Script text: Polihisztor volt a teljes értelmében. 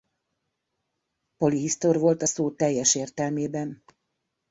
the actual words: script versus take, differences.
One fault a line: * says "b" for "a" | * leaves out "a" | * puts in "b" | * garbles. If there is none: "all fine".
* puts in "szó"